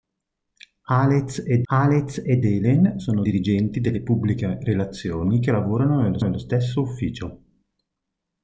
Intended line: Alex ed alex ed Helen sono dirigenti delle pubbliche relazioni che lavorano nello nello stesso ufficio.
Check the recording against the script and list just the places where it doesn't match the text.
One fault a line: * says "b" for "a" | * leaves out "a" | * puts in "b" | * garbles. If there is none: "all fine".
all fine